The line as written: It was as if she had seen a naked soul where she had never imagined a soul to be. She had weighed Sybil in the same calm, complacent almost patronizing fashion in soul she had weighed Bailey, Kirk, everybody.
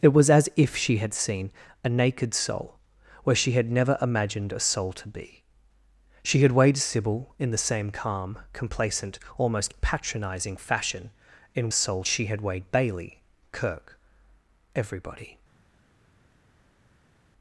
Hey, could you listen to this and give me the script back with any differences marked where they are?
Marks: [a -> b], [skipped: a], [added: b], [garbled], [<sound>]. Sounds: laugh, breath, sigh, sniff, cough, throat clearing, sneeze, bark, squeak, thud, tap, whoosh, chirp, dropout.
It was as if she had seen a naked soul where she had never imagined a soul to be. She had weighed Sybil in the same calm, complacent almost patronizing fashion in soul she had weighed Bailey, Kirk, everybody.